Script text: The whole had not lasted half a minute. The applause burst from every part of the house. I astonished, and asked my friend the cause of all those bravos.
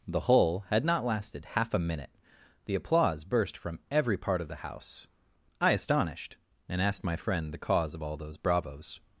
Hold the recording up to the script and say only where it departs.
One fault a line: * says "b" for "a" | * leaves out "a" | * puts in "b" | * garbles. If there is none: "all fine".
all fine